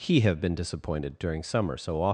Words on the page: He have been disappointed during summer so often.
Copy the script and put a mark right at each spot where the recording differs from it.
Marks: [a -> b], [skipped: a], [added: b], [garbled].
He have been disappointed during summer so often.